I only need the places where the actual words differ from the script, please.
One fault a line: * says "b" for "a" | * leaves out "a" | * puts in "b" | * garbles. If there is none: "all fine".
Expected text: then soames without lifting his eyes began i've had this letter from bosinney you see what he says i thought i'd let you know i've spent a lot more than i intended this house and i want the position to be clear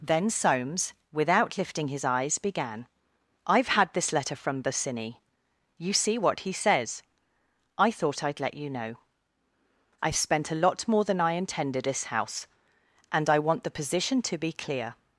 all fine